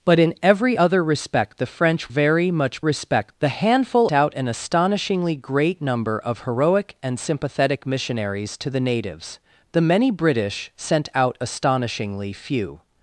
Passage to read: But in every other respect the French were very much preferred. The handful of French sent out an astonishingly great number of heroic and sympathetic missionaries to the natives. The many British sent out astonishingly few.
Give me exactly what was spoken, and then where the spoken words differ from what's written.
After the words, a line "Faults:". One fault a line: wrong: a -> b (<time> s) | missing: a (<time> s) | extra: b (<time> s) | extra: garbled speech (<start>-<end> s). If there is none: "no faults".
But in every other respect the French very much respect. The handful out an astonishingly great number of heroic and sympathetic missionaries to the natives. The many British sent out astonishingly few.
Faults:
missing: were (2.1 s)
wrong: preferred -> respect (2.8 s)
missing: of French sent (4.1 s)